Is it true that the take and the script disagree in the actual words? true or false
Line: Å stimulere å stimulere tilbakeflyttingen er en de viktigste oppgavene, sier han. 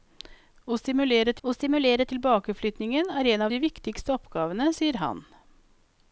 false